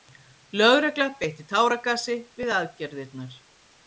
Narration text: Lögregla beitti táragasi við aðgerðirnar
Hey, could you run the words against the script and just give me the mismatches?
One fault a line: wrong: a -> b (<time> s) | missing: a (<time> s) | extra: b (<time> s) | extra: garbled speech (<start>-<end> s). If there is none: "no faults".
no faults